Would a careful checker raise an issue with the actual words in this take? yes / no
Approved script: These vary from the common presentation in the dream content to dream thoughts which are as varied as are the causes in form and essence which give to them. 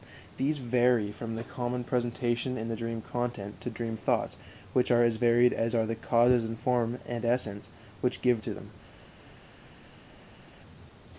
no